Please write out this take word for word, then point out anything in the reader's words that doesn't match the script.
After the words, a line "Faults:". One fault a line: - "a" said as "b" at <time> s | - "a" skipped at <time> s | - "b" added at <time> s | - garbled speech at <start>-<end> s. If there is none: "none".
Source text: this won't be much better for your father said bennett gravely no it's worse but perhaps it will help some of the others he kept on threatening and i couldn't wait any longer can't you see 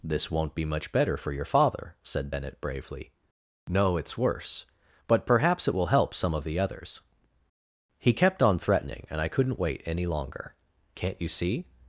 this won't be much better for your father said bennett bravely no it's worse but perhaps it will help some of the others he kept on threatening and i couldn't wait any longer can't you see
Faults:
- "gravely" said as "bravely" at 2.6 s